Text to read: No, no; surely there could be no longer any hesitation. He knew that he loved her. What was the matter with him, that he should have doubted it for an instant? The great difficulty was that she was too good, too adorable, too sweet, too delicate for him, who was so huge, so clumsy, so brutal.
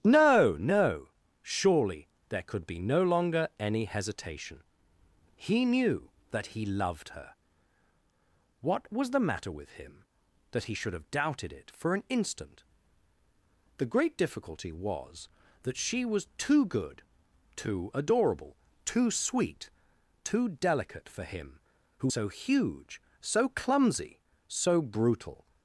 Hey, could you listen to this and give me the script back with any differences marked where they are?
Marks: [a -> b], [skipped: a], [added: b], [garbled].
No, no; surely there could be no longer any hesitation. He knew that he loved her. What was the matter with him, that he should have doubted it for an instant? The great difficulty was that she was too good, too adorable, too sweet, too delicate for him, who [skipped: was] so huge, so clumsy, so brutal.